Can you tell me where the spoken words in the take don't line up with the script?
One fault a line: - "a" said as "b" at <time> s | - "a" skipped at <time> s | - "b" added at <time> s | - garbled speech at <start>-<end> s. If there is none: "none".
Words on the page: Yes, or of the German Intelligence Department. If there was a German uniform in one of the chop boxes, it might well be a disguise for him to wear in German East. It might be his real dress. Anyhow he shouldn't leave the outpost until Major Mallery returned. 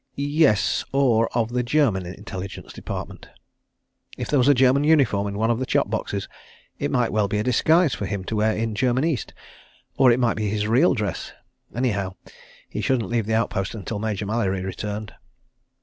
- "Or" added at 10.0 s